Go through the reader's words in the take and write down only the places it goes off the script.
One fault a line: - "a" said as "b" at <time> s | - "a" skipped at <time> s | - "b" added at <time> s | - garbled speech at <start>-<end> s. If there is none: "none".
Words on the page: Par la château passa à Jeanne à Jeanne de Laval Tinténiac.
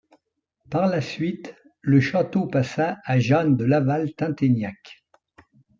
- "suite le" added at 1.0 s
- "à Jeanne" skipped at 3.6 s